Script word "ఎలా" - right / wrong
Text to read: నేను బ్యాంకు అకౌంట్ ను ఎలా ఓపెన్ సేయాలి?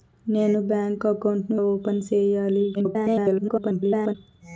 wrong